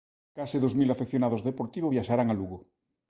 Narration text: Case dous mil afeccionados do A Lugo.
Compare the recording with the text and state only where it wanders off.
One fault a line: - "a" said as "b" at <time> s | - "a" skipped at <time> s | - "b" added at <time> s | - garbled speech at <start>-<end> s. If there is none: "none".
- "Deportivo viaxarán" added at 1.5 s